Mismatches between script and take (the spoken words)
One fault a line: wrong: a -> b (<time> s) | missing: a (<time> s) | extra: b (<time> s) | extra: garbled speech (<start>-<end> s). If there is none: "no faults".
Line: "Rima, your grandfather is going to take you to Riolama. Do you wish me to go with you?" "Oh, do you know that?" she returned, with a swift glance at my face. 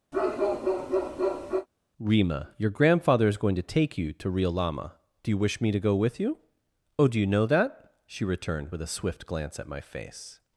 no faults